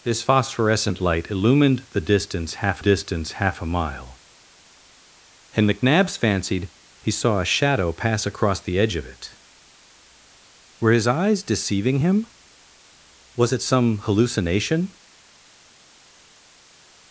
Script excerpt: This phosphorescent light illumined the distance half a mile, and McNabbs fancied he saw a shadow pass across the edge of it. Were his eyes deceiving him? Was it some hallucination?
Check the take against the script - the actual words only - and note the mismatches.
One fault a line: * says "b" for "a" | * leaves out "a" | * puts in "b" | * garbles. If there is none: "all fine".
* puts in "distance half"